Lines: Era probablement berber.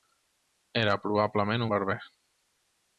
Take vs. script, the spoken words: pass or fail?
pass